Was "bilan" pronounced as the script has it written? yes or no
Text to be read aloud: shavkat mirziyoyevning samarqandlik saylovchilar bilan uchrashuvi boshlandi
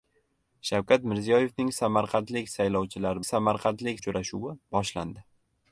no